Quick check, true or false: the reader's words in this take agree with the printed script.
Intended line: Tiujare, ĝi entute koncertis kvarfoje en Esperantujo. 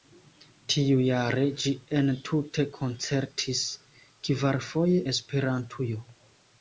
false